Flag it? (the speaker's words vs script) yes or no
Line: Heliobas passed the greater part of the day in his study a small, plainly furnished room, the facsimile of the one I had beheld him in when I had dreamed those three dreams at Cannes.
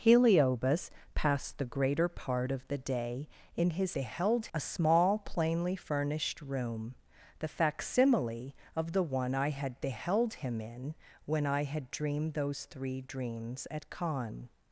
yes